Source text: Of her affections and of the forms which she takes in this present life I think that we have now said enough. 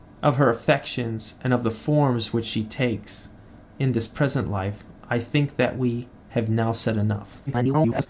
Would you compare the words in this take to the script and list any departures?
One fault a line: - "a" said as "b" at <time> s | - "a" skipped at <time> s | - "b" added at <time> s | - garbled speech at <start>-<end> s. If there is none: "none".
- garbled speech at 7.5-8.1 s